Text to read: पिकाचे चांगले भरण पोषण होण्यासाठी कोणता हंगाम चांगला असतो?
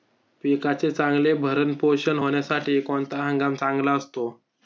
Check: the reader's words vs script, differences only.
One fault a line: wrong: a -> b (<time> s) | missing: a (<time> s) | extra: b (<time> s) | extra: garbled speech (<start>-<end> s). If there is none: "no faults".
no faults